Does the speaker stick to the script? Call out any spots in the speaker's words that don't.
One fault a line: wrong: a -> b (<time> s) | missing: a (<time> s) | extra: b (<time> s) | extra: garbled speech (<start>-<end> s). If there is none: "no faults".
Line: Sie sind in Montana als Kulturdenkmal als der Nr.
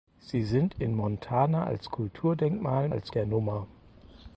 no faults